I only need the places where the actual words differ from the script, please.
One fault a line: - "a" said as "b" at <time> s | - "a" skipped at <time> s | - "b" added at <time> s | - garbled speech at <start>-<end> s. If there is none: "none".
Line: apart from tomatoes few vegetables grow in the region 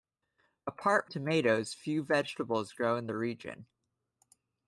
- "from" skipped at 1.1 s